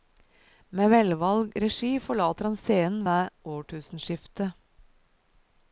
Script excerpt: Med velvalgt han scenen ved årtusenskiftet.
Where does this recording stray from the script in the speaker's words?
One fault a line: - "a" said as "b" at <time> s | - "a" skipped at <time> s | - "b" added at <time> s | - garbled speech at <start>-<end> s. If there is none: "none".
- "regi forlater" added at 1.6 s